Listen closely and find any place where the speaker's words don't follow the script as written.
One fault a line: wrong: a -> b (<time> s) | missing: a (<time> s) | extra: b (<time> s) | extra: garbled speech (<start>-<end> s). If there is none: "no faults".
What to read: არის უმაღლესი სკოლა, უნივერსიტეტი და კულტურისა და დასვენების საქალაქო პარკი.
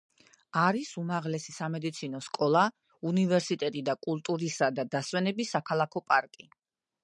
extra: სამედიცინო (1.6 s)